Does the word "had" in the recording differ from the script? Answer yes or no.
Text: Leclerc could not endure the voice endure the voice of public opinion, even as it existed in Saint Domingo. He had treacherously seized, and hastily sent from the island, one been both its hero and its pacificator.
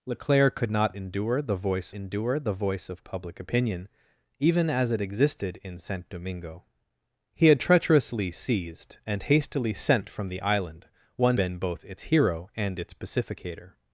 no